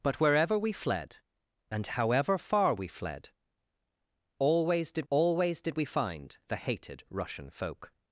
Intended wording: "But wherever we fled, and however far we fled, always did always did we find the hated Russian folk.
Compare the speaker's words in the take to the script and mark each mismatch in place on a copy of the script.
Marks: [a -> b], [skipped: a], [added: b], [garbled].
"But wherever we fled, and however far we fled, always did always did we find the hated Russian folk.